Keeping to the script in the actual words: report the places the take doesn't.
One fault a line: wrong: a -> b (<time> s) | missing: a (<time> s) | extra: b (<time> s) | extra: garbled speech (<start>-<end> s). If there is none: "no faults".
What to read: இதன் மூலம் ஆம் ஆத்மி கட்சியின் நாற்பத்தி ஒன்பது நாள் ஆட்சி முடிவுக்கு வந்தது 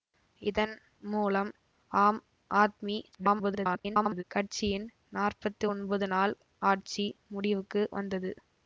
extra: garbled speech (3.1-4.2 s)